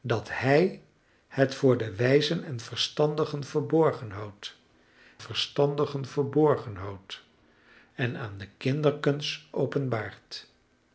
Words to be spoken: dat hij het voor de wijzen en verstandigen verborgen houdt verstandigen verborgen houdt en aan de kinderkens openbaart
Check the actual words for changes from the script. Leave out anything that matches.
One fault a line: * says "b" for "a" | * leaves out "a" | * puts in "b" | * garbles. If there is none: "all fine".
all fine